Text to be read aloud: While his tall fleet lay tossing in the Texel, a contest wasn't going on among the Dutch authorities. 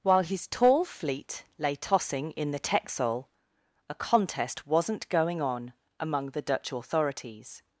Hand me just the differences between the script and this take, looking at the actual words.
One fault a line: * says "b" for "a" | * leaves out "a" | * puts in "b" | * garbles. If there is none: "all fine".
all fine